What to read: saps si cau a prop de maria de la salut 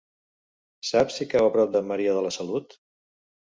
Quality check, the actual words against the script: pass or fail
pass